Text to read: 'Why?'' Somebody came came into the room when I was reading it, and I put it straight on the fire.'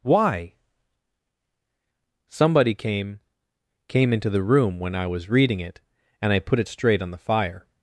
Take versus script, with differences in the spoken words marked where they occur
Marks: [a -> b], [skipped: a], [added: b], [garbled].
'Why?'' Somebody came came into the room when I was reading it, and I put it straight on the fire.'